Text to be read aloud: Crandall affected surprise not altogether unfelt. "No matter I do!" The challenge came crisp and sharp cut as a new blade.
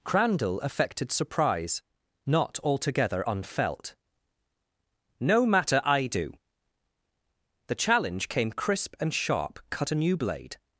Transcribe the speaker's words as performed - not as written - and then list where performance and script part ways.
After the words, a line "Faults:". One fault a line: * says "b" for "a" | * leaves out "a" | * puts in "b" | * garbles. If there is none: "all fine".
Crandall affected surprise not altogether unfelt. "No matter I do!" The challenge came crisp and sharp cut a new blade.
Faults:
* leaves out "as"